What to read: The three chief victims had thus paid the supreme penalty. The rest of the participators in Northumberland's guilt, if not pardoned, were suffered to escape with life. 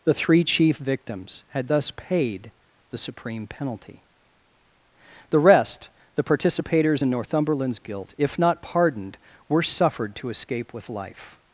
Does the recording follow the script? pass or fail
fail